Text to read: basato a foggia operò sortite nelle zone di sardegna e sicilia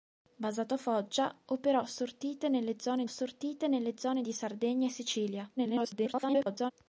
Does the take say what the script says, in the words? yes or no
no